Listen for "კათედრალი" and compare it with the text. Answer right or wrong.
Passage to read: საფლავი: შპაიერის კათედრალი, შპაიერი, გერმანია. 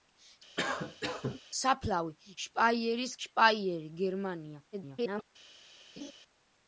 wrong